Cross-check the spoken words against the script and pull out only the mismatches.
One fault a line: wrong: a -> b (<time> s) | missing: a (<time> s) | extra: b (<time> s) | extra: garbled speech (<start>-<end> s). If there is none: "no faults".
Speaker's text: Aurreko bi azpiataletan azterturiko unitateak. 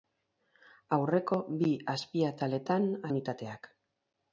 missing: azterturiko (2.9 s)